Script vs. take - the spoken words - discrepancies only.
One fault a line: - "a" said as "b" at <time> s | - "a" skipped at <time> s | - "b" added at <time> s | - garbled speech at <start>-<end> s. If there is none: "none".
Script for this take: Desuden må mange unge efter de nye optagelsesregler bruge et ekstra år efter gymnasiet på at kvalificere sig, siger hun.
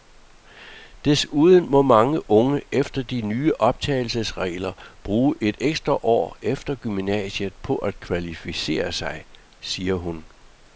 none